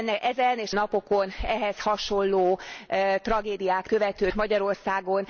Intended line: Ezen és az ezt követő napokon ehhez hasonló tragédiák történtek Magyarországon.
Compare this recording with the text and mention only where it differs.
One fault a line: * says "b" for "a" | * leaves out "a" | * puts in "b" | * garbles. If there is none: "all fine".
* leaves out "az ezt követő"
* says "követő" for "történtek"